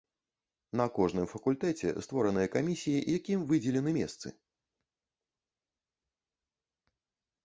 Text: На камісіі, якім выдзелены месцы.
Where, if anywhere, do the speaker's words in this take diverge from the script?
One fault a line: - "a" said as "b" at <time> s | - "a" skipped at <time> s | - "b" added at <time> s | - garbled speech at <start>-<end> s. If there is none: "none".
- "кожным факультэце створаныя" added at 0.9 s